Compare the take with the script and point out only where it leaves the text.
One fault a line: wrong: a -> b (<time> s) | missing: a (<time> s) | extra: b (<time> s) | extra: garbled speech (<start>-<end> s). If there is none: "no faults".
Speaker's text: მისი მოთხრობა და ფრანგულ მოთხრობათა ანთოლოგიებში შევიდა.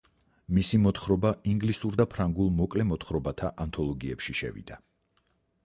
extra: ინგლისურ (1.5 s)
extra: მოკლე (2.6 s)